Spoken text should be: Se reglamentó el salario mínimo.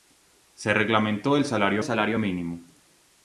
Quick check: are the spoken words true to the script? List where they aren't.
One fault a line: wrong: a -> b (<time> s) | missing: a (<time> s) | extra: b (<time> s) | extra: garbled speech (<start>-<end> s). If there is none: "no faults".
extra: salario (1.8 s)